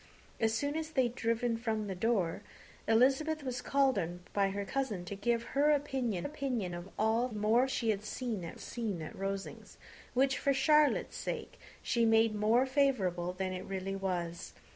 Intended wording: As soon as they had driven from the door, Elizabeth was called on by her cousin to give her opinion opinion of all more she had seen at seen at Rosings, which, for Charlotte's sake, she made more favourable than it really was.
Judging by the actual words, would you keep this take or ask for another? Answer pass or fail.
pass